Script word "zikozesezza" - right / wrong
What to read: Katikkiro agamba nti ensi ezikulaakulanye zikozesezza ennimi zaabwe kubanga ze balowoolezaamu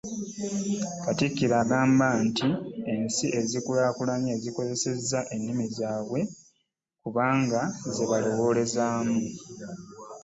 right